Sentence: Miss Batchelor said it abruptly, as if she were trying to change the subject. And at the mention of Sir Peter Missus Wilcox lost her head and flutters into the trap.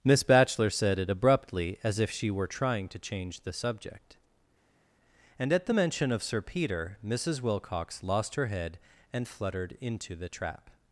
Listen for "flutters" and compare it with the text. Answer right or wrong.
wrong